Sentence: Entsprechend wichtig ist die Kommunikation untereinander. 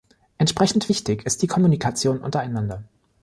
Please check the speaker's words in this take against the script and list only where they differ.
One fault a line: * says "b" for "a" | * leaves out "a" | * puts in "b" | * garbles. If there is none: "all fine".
all fine